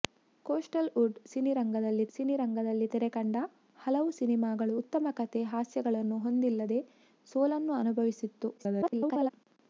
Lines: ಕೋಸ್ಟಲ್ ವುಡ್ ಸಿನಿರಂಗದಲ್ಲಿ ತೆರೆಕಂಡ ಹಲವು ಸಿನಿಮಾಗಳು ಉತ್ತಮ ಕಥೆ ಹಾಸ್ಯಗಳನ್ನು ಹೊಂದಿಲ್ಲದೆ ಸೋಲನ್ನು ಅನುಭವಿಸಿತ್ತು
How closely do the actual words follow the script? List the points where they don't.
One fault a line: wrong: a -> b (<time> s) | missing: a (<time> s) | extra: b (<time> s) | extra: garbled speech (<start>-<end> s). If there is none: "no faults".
extra: ಸಿನಿರಂಗದಲ್ಲಿ (2.1 s)
extra: garbled speech (8.6-9.3 s)